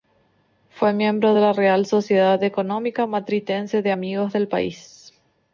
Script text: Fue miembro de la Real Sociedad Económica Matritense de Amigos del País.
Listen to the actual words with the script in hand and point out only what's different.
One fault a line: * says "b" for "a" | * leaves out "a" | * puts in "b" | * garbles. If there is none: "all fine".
all fine